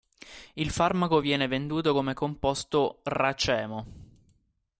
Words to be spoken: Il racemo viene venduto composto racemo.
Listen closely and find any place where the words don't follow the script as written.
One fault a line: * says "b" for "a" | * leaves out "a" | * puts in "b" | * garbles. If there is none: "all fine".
* says "farmaco" for "racemo"
* puts in "come"